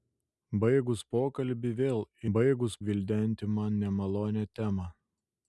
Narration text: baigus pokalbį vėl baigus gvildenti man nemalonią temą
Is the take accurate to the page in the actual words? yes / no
yes